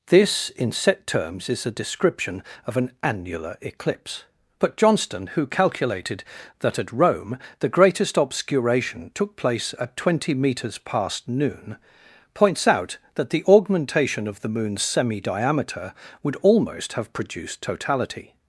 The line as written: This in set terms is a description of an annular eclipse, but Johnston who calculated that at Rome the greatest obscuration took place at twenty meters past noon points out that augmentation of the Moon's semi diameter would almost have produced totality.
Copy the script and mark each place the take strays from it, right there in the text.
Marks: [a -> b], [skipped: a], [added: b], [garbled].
This in set terms is a description of an annular eclipse, but Johnston who calculated that at Rome the greatest obscuration took place at twenty meters past noon points out that [added: the] augmentation of the Moon's semi diameter would almost have produced totality.